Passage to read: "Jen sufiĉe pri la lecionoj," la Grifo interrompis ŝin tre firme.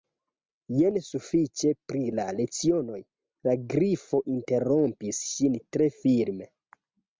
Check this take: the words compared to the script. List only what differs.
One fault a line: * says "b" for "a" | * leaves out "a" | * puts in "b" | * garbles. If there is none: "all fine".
all fine